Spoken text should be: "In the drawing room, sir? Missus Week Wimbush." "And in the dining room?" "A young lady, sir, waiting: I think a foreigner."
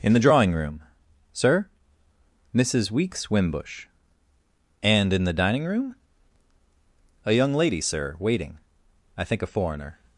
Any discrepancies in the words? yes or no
yes